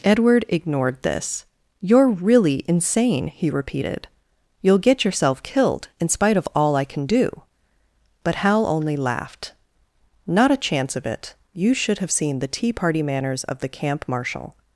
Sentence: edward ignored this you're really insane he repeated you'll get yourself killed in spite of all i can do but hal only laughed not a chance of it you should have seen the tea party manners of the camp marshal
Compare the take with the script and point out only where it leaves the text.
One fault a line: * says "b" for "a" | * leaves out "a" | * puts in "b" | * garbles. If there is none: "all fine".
all fine